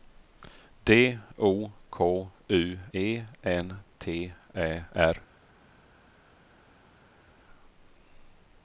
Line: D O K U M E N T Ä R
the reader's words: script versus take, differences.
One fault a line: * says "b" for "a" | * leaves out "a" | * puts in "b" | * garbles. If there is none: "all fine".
* leaves out "M"